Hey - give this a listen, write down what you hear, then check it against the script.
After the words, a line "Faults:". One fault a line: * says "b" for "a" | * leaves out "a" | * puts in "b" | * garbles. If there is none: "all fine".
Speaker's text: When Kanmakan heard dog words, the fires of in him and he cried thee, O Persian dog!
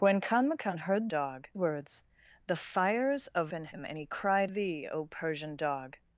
When Kanmakan heard dog words, the fires of in him and he cried thee, O Persian dog!
Faults:
all fine